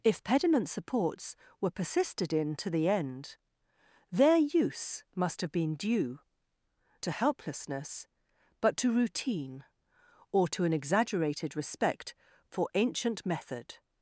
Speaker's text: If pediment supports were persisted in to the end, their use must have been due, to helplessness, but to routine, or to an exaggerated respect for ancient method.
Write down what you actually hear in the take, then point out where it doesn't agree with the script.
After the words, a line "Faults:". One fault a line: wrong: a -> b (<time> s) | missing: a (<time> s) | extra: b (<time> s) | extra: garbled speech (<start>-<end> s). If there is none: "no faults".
If pediment supports were persisted in to the end, their use must have been due, to helplessness, but to routine, or to an exaggerated respect for ancient method.
Faults:
no faults